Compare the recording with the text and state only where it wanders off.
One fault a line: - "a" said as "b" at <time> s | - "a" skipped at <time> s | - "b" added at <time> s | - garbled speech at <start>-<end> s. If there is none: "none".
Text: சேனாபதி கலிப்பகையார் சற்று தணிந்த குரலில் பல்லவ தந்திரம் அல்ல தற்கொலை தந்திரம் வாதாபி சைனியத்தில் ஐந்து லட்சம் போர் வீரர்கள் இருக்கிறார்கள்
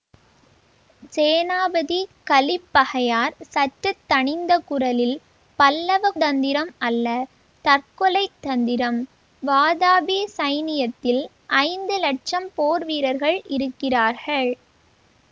none